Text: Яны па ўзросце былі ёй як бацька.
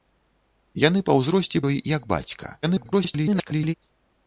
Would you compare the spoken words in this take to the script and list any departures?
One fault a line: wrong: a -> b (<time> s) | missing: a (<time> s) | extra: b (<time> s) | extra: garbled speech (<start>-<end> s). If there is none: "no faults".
missing: былі (1.6 s)
extra: garbled speech (2.6-3.7 s)